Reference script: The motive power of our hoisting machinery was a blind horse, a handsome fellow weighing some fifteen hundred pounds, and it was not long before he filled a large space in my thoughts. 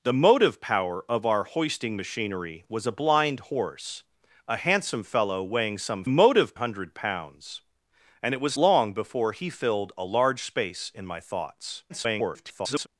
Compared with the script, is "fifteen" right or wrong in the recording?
wrong